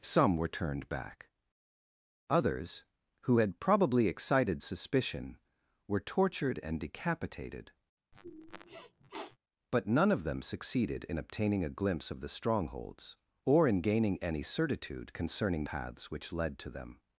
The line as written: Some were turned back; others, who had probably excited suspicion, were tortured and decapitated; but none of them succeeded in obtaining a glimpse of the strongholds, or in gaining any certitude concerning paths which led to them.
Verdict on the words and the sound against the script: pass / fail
fail